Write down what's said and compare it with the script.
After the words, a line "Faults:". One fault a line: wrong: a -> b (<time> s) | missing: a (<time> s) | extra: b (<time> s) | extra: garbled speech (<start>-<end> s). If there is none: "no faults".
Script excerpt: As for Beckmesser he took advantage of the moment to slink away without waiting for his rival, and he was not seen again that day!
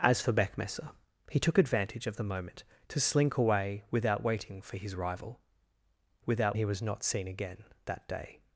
As for Beckmesser he took advantage of the moment to slink away without waiting for his rival, without he was not seen again that day!
Faults:
wrong: and -> without (6.3 s)